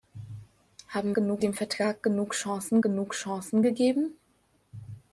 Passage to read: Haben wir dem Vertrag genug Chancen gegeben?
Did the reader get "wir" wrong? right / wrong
wrong